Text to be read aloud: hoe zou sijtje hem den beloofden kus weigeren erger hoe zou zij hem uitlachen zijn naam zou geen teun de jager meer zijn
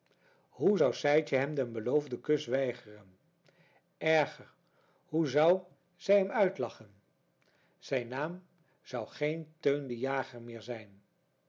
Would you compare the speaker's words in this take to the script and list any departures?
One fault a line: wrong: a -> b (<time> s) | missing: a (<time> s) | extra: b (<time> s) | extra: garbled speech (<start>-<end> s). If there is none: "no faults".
no faults